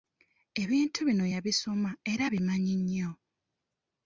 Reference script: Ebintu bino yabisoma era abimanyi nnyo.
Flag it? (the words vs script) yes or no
no